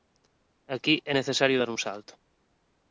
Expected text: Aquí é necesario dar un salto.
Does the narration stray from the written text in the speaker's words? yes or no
no